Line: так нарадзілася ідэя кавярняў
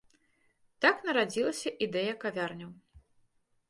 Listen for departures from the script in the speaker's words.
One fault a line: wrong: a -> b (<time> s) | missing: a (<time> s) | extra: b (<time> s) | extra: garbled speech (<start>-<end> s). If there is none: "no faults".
no faults